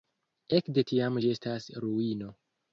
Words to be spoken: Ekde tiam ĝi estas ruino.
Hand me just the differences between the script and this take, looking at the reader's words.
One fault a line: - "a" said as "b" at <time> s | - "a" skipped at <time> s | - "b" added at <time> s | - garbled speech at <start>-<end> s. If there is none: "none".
none